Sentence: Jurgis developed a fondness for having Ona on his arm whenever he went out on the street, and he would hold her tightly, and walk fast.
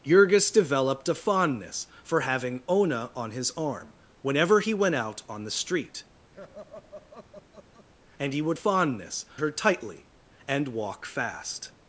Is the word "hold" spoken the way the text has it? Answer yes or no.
no